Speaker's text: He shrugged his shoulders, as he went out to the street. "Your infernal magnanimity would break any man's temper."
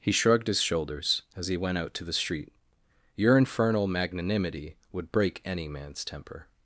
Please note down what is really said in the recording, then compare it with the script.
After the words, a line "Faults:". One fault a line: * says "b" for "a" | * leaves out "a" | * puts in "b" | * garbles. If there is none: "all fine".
He shrugged his shoulders, as he went out to the street. "Your infernal magnanimity would break any man's temper."
Faults:
all fine